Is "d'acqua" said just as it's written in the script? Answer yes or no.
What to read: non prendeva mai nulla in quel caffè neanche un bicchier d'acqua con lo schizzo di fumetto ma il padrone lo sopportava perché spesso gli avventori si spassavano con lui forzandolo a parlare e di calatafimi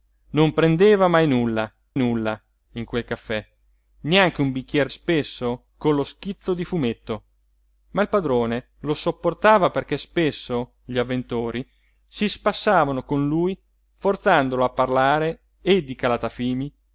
no